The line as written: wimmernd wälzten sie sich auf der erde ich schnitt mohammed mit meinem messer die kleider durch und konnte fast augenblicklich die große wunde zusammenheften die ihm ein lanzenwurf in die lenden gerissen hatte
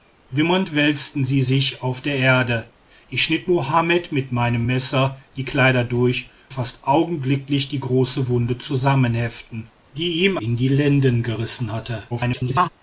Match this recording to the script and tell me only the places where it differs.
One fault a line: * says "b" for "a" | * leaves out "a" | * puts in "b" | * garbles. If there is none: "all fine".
* leaves out "und konnte"
* leaves out "ein lanzenwurf"
* garbles